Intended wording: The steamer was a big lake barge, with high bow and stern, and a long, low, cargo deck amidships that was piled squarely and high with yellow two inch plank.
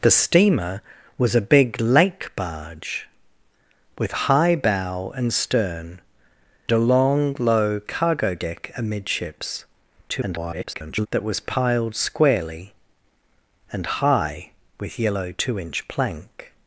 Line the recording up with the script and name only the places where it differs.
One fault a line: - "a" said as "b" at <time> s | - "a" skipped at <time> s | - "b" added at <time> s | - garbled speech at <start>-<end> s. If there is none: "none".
- "and" skipped at 6.0 s
- garbled speech at 10.1-11.1 s